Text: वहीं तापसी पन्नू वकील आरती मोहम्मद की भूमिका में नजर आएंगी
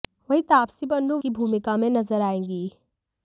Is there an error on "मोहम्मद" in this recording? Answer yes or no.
yes